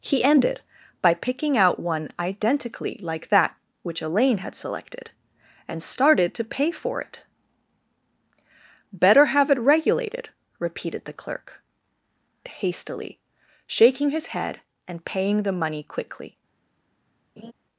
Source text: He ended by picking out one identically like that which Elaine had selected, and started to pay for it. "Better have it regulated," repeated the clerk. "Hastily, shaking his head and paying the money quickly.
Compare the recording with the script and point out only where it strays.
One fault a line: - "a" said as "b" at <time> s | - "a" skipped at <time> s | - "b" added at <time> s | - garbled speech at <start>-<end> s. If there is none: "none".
none